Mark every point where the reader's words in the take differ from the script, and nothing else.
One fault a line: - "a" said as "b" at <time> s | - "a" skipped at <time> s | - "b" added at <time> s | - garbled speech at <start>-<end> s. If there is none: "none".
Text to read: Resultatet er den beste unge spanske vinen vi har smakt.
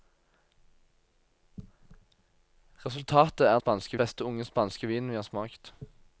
- "den" said as "spanske" at 3.5 s